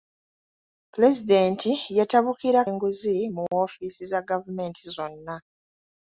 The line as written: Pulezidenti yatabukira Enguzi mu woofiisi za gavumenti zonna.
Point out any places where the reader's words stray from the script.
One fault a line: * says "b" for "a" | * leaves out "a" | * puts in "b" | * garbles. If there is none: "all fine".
all fine